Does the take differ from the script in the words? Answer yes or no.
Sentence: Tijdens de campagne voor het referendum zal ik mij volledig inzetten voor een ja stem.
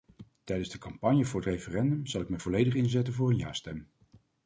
no